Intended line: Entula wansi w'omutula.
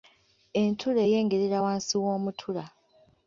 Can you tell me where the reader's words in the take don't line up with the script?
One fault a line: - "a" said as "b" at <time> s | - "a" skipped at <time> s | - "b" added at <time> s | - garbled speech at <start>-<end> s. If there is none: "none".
- "eyengerera" added at 1.0 s